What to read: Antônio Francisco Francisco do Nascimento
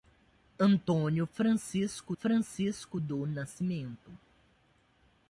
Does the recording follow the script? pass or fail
pass